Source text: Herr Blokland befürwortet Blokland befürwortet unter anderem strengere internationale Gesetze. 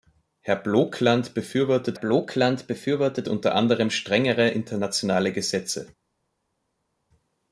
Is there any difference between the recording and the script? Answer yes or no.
no